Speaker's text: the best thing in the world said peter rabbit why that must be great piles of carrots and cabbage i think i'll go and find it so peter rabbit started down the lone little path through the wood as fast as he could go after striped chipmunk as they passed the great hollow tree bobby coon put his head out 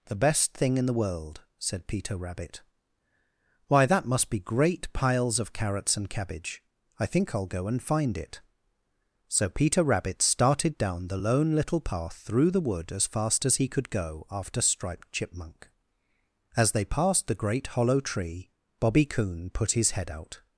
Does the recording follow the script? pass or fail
pass